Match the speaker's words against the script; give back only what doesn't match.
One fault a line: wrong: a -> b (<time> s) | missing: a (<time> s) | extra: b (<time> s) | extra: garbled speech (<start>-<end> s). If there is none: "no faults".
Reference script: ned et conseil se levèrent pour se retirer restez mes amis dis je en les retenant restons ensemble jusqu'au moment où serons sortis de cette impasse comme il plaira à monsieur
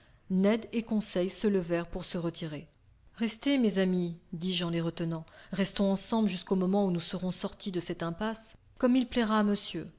extra: nous (6.9 s)